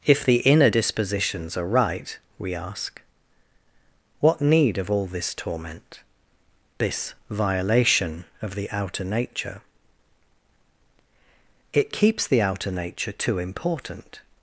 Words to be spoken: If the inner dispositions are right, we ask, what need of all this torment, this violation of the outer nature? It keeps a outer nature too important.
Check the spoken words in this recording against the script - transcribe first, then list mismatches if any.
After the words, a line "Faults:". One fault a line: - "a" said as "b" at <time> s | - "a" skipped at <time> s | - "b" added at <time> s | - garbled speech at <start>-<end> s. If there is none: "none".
If the inner dispositions are right, we ask, what need of all this torment, this violation of the outer nature? It keeps the outer nature too important.
Faults:
- "a" said as "the" at 12.3 s